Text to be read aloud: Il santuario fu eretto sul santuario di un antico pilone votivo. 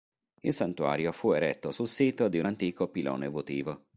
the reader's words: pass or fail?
fail